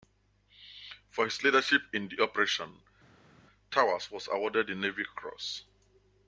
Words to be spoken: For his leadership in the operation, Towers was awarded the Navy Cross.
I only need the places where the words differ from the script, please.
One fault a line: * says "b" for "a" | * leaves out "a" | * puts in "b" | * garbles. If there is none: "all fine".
all fine